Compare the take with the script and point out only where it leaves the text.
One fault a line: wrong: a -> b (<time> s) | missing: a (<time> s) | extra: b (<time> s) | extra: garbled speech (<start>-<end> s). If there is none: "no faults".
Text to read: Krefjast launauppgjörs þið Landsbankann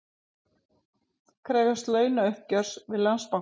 wrong: þið -> við (2.9 s)